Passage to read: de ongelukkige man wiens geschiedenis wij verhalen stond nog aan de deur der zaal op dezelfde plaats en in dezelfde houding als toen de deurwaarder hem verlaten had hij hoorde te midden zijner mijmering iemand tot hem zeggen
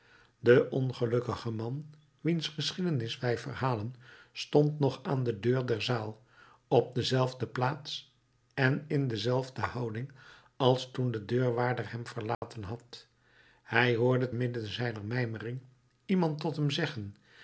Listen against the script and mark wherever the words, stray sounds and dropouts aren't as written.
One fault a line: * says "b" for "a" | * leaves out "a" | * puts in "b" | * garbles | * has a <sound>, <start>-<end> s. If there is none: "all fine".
* has a dropout, 12.3-12.4 s
* leaves out "te"